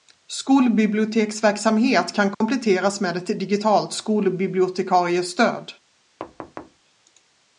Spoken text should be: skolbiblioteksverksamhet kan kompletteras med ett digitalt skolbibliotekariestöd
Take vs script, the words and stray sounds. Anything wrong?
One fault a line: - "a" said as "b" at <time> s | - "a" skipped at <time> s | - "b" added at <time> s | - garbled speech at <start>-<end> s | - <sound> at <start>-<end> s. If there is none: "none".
- dropout at 2.3-2.4 s
- thud at 6.2-6.8 s